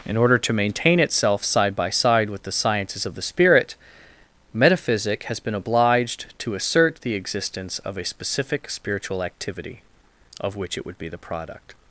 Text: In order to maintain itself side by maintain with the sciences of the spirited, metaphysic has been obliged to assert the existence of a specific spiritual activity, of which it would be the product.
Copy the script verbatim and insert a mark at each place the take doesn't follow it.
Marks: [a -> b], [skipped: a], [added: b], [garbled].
In order to maintain itself side by [maintain -> side] with the sciences of the [spirited, -> spirit] metaphysic has been obliged to assert the existence of a specific spiritual activity, of which it would be the product.